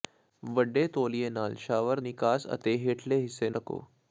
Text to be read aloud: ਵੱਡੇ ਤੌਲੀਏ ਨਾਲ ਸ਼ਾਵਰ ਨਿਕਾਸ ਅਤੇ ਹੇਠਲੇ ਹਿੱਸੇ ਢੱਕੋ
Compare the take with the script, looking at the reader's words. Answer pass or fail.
pass